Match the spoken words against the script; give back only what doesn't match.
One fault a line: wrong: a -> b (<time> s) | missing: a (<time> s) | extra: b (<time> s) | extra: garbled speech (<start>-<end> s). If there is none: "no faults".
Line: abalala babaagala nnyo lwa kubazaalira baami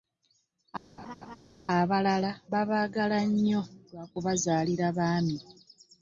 no faults